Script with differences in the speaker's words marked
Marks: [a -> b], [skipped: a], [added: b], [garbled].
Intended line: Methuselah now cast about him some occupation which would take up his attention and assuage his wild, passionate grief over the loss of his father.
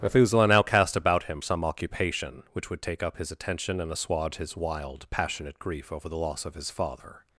Methuselah now cast about him some occupation which would take up his attention and assuage his wild, passionate grief over the loss of his father.